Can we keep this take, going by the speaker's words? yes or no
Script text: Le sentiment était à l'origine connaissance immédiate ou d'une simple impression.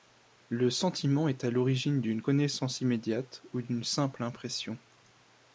no